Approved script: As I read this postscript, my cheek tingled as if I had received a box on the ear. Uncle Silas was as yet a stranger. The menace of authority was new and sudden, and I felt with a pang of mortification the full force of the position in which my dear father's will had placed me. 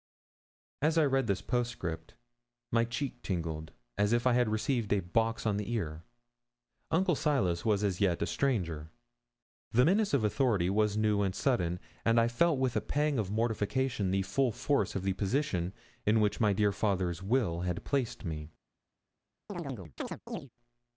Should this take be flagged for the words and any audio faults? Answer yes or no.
yes